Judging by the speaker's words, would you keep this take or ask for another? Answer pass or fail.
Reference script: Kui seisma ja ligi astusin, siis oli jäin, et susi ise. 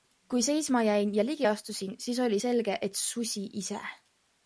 fail